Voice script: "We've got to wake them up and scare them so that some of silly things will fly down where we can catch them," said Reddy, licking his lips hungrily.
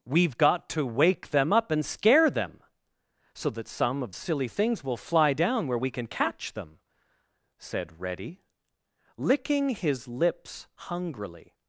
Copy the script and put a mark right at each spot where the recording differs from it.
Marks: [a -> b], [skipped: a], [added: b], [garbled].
"We've got to wake them up and scare them so that some of silly things will fly down where we can catch them," said Reddy, licking his lips hungrily.